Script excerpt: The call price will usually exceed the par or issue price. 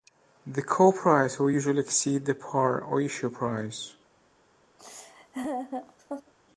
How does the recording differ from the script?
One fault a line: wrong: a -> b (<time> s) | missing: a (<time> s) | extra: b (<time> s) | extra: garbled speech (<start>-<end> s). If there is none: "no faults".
no faults